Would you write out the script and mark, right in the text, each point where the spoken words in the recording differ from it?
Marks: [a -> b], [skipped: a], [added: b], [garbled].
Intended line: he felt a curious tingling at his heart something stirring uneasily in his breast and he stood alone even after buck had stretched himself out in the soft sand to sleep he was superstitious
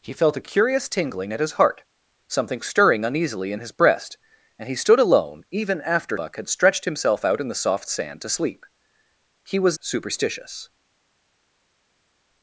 he felt a curious tingling at his heart something stirring uneasily in his breast and he stood alone even after buck had stretched himself out in the soft sand to sleep he was superstitious